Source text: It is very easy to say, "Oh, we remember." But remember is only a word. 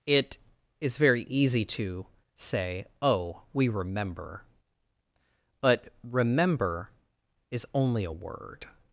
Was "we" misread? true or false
false